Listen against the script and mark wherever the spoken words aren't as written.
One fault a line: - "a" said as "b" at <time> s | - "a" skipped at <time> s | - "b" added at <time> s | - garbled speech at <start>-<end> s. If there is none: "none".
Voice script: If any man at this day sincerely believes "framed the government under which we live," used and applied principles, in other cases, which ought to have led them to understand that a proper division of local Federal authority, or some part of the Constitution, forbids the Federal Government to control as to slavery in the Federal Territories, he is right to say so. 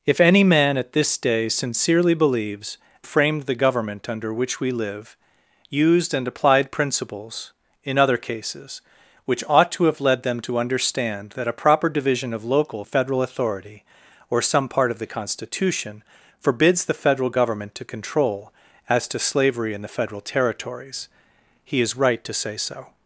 none